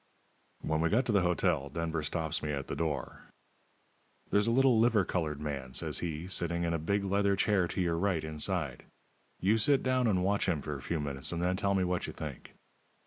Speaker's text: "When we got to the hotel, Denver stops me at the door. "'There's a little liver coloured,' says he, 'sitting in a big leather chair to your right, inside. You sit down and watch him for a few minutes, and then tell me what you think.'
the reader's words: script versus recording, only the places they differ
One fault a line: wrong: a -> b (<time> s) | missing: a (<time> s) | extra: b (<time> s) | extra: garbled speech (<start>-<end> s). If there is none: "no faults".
extra: man (5.4 s)